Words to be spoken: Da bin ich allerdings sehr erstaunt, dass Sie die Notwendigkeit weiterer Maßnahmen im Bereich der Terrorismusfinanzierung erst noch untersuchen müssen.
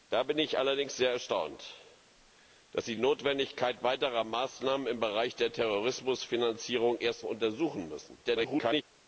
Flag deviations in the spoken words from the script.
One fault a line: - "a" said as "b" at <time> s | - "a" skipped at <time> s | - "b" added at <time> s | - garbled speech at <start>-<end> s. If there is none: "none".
- "die" skipped at 3.0 s
- "noch" skipped at 7.3 s
- garbled speech at 8.2-8.8 s